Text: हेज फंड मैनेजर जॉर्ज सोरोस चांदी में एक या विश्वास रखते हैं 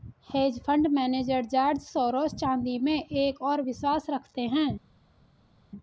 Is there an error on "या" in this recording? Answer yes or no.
yes